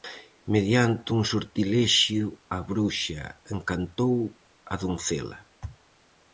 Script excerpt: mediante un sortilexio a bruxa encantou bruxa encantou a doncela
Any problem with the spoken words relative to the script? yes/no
yes